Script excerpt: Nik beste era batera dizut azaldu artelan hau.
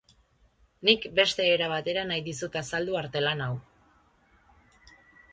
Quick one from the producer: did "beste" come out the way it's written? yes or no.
yes